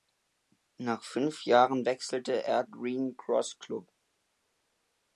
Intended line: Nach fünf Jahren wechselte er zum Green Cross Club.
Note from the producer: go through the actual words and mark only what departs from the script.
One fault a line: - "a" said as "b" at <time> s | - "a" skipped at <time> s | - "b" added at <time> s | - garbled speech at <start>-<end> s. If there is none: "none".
- "zum" skipped at 2.6 s